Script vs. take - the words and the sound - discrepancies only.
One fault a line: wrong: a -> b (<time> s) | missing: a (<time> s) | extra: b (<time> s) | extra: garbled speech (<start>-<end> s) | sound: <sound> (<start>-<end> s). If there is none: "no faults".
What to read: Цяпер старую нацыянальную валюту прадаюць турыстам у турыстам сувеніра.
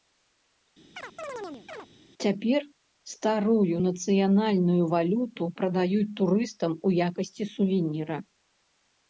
sound: chirp (1.0-1.9 s)
wrong: турыстам -> якасці (7.1 s)